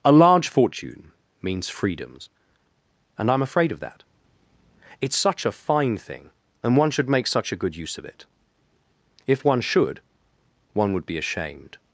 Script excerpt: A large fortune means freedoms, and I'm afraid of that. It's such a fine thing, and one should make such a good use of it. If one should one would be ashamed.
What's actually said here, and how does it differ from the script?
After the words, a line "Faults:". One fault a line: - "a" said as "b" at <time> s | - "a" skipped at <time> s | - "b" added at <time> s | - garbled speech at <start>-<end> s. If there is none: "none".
A large fortune means freedoms, and I'm afraid of that. It's such a fine thing, and one should make such a good use of it. If one should one would be ashamed.
Faults:
none